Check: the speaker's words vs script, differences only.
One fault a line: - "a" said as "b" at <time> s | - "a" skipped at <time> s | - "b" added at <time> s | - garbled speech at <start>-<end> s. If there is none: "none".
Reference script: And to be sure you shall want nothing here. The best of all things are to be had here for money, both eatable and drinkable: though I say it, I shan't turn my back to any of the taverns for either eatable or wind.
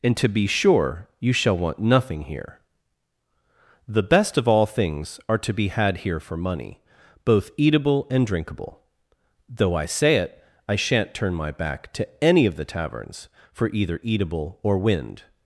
none